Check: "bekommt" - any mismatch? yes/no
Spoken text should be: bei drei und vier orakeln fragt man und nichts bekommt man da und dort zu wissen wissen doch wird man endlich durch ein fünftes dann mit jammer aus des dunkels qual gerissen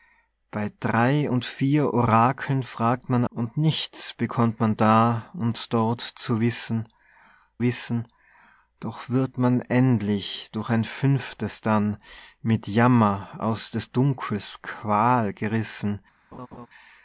no